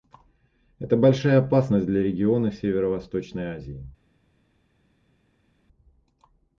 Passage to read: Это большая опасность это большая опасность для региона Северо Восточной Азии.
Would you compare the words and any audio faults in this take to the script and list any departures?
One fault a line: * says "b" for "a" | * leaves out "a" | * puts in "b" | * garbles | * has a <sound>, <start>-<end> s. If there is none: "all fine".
* leaves out "это большая опасность"